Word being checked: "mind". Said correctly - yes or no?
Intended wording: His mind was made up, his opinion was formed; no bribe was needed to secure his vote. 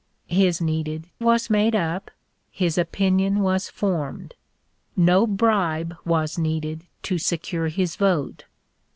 no